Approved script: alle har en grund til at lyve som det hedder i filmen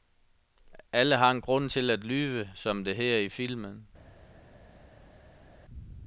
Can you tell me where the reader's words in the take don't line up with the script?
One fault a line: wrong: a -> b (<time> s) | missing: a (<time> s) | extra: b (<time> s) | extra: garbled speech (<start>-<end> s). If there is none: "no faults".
no faults